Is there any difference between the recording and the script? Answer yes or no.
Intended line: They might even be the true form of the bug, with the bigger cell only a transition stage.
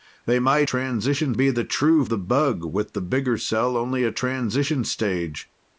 yes